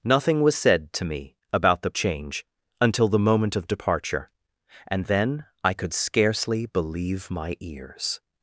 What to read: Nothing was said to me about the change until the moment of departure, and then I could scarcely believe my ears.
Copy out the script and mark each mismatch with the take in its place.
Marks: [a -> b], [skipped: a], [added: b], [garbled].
Nothing was said to me about the change until the moment of departure, and then I could scarcely believe my ears.